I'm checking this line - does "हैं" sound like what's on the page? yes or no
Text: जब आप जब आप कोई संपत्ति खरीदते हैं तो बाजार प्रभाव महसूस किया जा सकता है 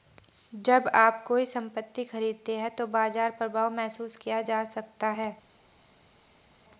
yes